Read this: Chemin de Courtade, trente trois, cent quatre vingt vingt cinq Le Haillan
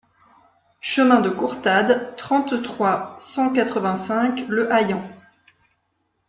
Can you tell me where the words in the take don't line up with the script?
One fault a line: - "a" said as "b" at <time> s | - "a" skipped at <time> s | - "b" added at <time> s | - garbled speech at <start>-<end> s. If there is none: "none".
- "vingt" skipped at 4.0 s